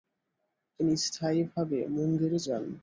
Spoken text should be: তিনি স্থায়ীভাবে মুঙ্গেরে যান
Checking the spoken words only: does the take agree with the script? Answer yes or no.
yes